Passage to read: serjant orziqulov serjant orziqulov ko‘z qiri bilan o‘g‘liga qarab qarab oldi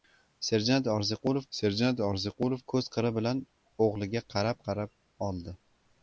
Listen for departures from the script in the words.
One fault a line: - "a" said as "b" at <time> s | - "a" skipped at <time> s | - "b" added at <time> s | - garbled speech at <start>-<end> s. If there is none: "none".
none